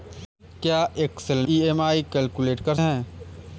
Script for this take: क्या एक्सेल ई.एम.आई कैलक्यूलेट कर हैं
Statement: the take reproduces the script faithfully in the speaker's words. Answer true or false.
true